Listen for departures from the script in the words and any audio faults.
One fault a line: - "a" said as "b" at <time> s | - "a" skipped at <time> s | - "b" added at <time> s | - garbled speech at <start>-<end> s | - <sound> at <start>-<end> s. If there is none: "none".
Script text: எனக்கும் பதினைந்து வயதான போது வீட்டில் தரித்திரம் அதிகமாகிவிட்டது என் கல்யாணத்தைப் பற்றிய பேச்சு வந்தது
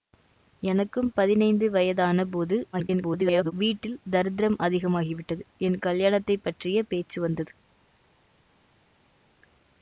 - garbled speech at 2.7-3.5 s